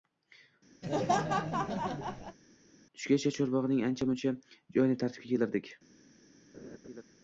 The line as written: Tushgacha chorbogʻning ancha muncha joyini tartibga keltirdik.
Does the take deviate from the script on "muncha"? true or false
false